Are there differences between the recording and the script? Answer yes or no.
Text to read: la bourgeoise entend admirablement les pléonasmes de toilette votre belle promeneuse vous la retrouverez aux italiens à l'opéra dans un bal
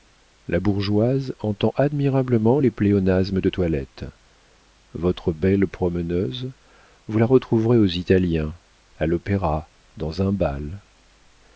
no